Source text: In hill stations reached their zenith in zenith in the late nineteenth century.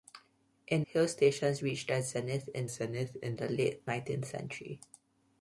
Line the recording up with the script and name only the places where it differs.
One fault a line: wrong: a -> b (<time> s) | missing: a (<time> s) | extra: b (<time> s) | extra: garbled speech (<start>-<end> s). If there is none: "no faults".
no faults